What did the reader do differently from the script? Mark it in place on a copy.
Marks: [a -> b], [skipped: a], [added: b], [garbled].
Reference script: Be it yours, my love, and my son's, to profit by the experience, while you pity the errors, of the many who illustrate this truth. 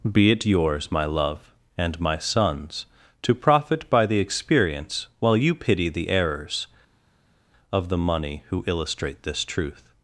Be it yours, my love, and my son's, to profit by the experience, while you pity the errors, of the [many -> money] who illustrate this truth.